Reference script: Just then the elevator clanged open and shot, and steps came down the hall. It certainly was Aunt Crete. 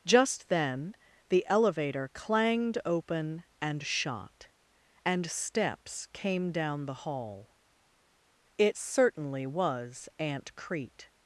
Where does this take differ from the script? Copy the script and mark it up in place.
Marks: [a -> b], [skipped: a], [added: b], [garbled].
Just then the elevator clanged open and shot, and steps came down the hall. It certainly was Aunt Crete.